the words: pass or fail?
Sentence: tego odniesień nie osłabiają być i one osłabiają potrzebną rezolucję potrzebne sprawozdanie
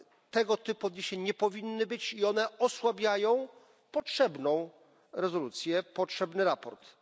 fail